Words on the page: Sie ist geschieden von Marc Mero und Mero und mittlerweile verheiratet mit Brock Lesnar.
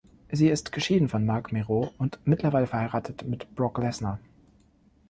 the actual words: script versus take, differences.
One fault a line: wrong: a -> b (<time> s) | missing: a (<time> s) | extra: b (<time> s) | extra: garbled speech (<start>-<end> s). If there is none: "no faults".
missing: Mero und (2.2 s)